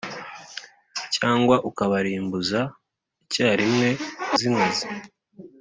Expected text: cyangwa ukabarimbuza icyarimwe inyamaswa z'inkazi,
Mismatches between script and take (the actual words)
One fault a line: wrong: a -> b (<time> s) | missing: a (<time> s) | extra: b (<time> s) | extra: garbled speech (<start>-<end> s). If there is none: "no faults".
missing: inyamaswa (3.9 s)